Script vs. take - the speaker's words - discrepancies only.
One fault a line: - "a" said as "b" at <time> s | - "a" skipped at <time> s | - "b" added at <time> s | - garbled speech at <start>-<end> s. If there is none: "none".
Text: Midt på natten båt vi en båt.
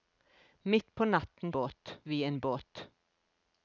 none